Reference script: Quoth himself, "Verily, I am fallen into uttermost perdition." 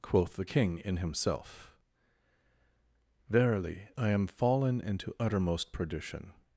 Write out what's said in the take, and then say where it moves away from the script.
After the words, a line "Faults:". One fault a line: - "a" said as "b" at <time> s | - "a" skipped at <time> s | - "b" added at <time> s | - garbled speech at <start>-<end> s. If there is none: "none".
Quoth the King in himself, "Verily, I am fallen into uttermost perdition."
Faults:
- "the King in" added at 0.3 s